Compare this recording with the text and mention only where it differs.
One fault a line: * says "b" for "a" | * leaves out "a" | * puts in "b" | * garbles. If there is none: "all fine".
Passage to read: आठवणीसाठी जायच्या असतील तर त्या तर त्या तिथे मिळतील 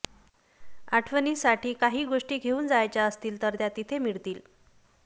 * puts in "काही गोष्टी घेऊन"
* leaves out "तर त्या"